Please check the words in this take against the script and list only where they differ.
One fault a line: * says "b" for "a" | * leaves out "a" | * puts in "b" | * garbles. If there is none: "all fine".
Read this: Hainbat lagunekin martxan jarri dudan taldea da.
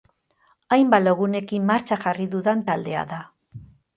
all fine